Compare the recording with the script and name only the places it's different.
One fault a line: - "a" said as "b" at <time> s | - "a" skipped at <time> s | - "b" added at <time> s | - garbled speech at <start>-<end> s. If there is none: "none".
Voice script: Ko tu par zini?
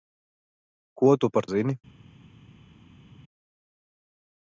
none